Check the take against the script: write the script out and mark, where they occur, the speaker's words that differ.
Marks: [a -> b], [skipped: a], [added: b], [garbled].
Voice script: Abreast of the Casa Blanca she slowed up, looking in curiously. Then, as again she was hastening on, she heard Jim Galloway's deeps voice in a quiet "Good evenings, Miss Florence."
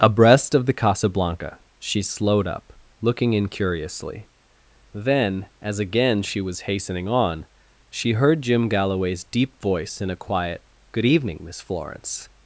Abreast of the Casa Blanca she slowed up, looking in curiously. Then, as again she was hastening on, she heard Jim Galloway's [deeps -> deep] voice in a quiet "Good [evenings, -> evening] Miss Florence."